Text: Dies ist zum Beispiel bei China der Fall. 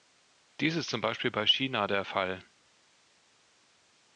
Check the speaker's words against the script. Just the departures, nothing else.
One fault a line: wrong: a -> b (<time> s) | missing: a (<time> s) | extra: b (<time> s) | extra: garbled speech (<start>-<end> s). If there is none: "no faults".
no faults